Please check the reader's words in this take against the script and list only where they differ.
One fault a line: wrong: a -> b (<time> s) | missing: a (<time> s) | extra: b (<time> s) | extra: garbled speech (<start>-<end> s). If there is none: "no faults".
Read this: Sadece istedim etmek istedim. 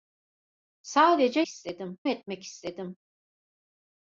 no faults